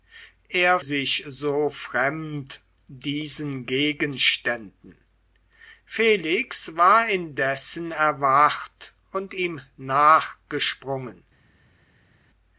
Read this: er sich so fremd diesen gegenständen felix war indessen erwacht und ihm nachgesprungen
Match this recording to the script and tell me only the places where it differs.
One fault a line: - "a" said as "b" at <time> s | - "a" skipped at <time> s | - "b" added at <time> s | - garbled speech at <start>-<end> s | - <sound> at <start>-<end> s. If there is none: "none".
none